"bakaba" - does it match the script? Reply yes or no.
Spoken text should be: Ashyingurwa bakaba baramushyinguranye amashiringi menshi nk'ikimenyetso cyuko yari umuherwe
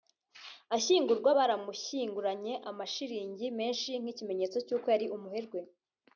no